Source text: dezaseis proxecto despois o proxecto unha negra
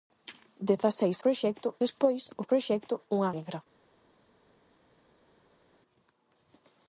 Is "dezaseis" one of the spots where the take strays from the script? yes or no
no